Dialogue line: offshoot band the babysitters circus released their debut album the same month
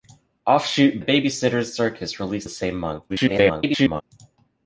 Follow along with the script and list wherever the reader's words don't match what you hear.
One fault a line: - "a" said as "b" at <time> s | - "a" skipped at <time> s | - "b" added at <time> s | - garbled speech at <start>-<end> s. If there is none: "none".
- "band" skipped at 1.0 s
- "their debut album" skipped at 2.5 s
- garbled speech at 3.1-4.0 s